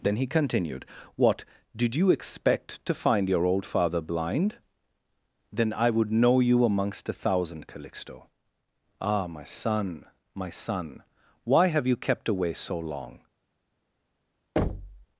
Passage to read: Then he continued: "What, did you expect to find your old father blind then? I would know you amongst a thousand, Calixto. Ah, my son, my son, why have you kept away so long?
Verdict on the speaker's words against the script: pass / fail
pass